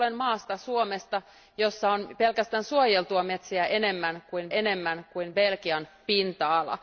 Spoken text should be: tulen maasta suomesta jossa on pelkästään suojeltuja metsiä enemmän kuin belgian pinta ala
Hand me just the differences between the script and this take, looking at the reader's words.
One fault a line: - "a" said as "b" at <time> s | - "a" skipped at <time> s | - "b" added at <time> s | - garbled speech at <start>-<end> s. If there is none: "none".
- "enemmän kuin" added at 4.5 s